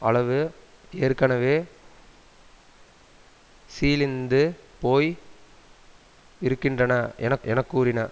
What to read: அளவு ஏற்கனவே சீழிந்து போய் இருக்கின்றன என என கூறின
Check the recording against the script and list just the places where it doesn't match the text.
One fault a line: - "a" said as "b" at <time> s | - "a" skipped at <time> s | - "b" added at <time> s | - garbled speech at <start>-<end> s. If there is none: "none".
none